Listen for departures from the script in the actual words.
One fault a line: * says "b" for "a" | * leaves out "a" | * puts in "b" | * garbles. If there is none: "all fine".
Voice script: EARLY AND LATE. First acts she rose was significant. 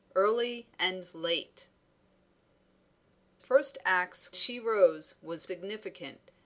all fine